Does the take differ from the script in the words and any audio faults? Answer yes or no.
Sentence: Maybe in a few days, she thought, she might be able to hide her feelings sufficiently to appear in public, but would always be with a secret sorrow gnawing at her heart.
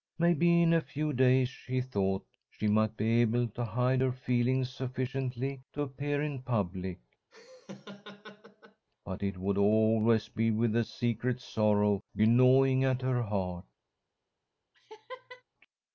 yes